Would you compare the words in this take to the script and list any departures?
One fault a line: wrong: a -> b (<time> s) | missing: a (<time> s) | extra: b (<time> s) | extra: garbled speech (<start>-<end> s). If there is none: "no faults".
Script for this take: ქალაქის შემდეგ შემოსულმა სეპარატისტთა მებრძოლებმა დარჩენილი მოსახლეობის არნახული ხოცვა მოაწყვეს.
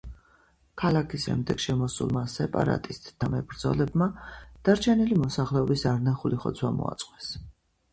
no faults